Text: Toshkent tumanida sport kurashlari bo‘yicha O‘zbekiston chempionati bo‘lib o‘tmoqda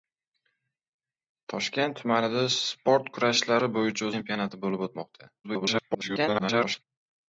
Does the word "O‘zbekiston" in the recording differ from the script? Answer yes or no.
yes